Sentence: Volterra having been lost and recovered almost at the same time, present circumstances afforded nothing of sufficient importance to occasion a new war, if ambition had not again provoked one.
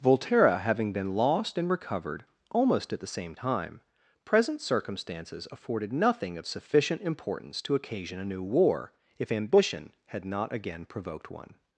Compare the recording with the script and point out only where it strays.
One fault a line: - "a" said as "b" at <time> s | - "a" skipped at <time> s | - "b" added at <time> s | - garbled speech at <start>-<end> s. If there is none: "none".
none